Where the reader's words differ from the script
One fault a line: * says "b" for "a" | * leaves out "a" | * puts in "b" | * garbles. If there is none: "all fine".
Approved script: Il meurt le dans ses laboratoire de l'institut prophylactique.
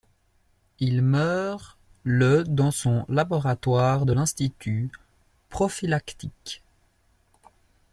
* says "son" for "ses"